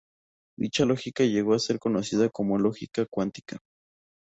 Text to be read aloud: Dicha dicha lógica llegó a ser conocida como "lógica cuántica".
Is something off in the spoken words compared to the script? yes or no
yes